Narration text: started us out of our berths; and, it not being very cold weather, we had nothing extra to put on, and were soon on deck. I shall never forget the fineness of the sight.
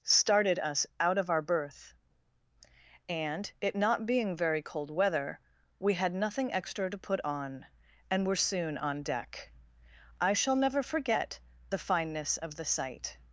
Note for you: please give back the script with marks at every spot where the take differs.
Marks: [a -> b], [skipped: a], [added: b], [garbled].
started us out of our [berths; -> berth] and, it not being very cold weather, we had nothing extra to put on, and were soon on deck. I shall never forget the fineness of the sight.